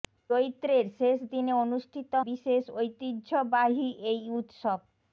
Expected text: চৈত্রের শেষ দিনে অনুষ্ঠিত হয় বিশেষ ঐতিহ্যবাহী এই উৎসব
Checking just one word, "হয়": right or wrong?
wrong